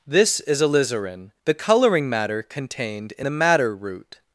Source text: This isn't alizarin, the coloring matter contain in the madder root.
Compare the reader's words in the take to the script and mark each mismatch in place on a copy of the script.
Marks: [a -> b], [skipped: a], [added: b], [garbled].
This [isn't -> is] alizarin, the coloring matter [contain -> contained] in the madder root.